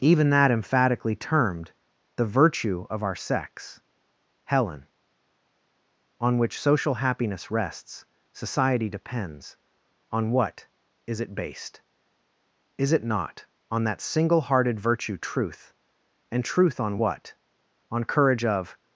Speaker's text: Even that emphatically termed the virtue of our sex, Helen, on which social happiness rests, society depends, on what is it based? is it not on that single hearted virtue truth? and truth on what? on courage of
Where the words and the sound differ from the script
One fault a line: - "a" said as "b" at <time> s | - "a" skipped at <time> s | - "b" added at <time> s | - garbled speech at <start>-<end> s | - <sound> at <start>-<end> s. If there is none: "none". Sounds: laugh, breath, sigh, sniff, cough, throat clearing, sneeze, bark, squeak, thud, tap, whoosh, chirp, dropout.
none